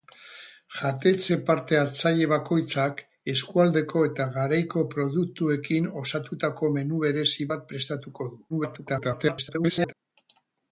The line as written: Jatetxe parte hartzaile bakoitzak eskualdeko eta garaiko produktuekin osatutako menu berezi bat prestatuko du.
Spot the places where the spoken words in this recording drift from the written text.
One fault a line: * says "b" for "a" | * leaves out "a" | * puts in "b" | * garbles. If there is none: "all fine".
* garbles